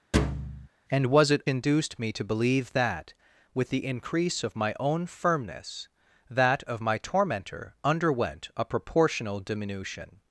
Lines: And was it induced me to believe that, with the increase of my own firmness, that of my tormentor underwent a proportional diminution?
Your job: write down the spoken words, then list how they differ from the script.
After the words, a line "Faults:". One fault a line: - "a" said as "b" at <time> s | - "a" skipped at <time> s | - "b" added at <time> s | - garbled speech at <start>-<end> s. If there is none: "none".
And was it induced me to believe that, with the increase of my own firmness, that of my tormentor underwent a proportional diminution?
Faults:
none